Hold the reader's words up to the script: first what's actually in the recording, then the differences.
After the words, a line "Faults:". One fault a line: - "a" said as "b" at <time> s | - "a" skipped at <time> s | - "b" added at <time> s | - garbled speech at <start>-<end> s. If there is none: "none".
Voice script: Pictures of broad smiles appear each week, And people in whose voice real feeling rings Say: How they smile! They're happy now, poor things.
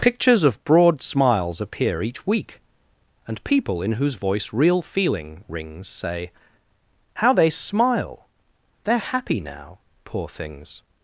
Pictures of broad smiles appear each week, And people in whose voice real feeling rings Say: How they smile! They're happy now, poor things.
Faults:
none